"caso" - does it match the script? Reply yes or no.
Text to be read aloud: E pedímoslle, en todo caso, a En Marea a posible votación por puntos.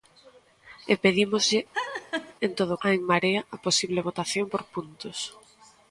no